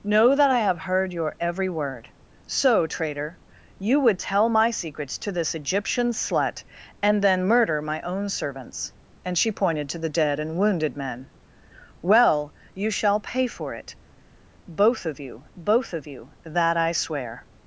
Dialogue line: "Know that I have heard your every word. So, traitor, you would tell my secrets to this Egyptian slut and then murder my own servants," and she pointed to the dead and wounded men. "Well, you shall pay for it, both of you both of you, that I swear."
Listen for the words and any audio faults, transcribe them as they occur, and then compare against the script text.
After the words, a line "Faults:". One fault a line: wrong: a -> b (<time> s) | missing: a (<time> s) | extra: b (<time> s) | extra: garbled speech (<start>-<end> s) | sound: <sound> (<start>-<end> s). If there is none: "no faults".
"Know that I have heard your every word. So, traitor, you would tell my secrets to this Egyptian slut and then murder my own servants," and she pointed to the dead and wounded men. "Well, you shall pay for it, both of you both of you, that I swear."
Faults:
no faults